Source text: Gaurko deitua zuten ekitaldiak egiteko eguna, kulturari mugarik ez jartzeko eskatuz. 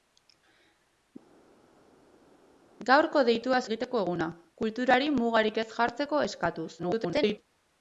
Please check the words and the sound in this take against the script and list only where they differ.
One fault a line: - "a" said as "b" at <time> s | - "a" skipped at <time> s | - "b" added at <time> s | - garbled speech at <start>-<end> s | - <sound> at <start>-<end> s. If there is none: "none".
- "zuten ekitaldiak" skipped at 3.6 s
- garbled speech at 6.8-7.4 s